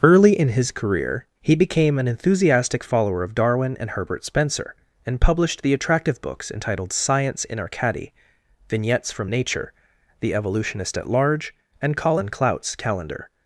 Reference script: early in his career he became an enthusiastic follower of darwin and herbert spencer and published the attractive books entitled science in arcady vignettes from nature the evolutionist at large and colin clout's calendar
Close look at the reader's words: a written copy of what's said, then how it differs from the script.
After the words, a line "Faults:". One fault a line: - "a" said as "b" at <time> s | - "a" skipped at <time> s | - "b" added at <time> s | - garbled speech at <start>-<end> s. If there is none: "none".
early in his career he became an enthusiastic follower of darwin and herbert spencer and published the attractive books entitled science in arcady vignettes from nature the evolutionist at large and colin clout's calendar
Faults:
none